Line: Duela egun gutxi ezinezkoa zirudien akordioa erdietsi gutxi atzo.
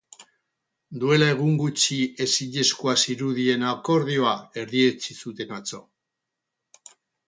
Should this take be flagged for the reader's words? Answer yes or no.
yes